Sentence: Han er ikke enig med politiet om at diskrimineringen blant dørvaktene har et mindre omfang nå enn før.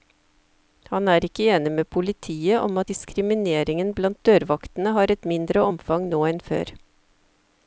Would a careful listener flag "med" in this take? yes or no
no